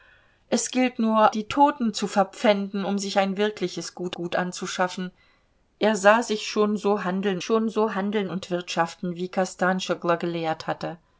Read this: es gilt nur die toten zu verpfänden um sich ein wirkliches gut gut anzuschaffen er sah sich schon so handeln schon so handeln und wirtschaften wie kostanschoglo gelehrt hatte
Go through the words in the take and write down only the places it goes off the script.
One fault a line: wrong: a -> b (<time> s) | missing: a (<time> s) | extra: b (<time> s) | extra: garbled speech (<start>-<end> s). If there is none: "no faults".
no faults